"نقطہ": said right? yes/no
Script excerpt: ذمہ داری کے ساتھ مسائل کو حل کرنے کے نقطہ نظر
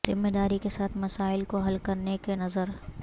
no